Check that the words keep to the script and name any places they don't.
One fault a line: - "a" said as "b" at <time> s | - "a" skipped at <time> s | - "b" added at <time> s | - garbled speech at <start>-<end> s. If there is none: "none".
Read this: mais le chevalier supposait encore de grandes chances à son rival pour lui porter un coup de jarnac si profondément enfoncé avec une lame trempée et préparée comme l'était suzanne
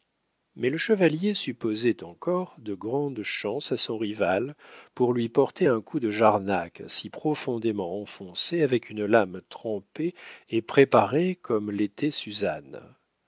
none